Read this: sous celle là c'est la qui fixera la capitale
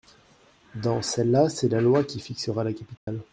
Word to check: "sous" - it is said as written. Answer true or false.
false